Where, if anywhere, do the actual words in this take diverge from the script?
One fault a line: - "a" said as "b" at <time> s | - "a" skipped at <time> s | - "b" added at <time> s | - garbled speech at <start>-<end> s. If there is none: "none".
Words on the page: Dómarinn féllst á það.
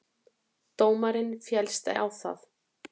none